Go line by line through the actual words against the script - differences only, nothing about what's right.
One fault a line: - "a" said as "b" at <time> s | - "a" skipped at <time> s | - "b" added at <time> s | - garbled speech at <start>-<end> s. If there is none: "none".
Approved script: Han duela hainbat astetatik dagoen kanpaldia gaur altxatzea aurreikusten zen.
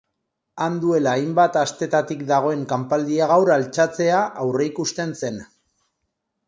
none